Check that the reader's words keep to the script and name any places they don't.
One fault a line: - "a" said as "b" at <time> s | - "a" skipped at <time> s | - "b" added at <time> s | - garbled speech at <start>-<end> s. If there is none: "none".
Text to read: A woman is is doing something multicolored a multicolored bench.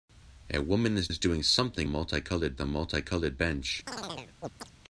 none